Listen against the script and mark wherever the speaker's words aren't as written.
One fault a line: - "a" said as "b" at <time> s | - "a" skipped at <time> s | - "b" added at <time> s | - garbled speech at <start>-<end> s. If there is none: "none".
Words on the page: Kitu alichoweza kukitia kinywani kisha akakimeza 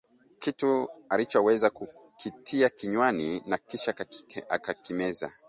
- "na" added at 3.5 s